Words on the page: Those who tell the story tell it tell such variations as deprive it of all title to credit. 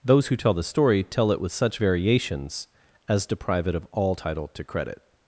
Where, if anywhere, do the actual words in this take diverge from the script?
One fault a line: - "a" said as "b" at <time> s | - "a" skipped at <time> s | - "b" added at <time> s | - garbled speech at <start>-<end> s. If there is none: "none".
- "tell" said as "with" at 1.4 s